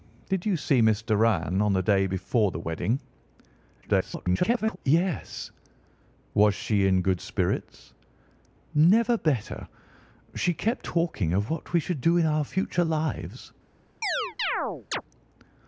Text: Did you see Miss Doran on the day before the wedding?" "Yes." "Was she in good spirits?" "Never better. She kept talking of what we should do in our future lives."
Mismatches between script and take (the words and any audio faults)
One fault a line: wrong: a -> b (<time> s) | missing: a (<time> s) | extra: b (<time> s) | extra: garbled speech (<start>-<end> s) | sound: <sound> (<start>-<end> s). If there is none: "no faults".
extra: garbled speech (3.8-4.8 s)
sound: chirp (14.0-15.0 s)